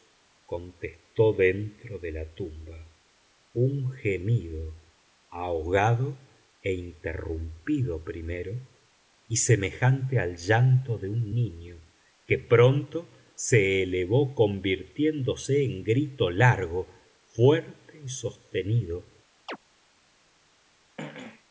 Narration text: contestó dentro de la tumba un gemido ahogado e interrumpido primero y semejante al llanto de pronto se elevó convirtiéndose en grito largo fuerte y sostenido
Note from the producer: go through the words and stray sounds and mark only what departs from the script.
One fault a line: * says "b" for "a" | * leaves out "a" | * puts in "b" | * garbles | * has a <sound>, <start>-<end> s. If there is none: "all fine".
* puts in "un niño que"
* has a chirp, 19.5-19.6 s
* has a throat clearing, 21.0-21.4 s